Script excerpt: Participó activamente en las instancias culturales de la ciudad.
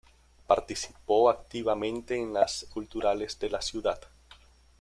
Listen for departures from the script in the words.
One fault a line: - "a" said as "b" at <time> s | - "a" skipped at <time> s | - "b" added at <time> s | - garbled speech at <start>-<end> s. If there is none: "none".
- "instancias" skipped at 2.6 s